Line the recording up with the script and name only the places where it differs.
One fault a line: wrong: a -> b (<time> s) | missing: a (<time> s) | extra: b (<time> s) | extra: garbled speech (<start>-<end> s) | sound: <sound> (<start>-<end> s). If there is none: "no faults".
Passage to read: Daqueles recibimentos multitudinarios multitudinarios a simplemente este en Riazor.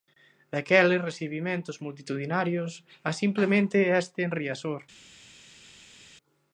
missing: multitudinarios (2.7 s)